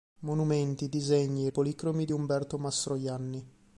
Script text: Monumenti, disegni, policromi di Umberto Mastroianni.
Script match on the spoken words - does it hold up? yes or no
yes